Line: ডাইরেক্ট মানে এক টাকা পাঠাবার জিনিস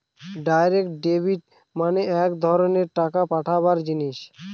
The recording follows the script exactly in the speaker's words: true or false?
false